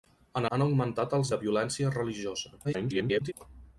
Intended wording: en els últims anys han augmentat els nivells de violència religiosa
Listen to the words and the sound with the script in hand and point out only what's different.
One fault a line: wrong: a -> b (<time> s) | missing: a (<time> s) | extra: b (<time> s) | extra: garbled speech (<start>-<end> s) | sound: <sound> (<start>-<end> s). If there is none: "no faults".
missing: els últims anys (0.5 s)
missing: nivells (1.3 s)
extra: garbled speech (2.6-3.3 s)